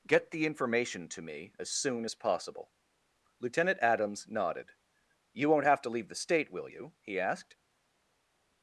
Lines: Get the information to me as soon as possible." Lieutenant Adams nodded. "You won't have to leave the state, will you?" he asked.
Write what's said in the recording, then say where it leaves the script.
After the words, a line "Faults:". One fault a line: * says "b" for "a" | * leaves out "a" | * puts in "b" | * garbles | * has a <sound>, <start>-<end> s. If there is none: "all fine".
Get the information to me as soon as possible." Lieutenant Adams nodded. "You won't have to leave the state, will you?" he asked.
Faults:
all fine